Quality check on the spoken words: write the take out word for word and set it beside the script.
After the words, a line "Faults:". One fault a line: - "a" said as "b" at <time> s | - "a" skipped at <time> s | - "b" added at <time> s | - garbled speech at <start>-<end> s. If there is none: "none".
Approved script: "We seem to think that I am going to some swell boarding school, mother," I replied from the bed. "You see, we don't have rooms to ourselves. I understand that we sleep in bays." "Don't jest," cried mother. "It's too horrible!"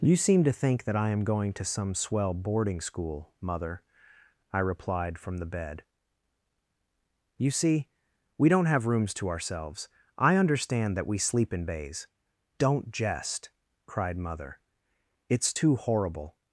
"You seem to think that I am going to some swell boarding school, mother," I replied from the bed. "You see, we don't have rooms to ourselves. I understand that we sleep in bays." "Don't jest," cried mother. "It's too horrible!"
Faults:
- "We" said as "You" at 0.0 s